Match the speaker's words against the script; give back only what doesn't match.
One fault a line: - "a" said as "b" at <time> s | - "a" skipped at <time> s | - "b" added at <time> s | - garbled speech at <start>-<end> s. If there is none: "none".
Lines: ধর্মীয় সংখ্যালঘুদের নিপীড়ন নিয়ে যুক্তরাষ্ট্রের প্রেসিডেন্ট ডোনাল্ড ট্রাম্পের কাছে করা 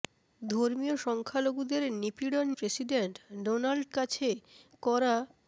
- "নিয়ে যুক্তরাষ্ট্রের" skipped at 2.5 s
- "ট্রাম্পের" skipped at 3.8 s